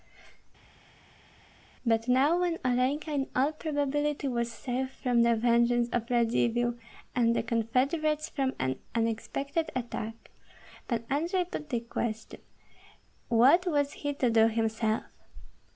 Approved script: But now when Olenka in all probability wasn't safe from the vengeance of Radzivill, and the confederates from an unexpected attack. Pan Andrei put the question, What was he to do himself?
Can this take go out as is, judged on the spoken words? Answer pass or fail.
fail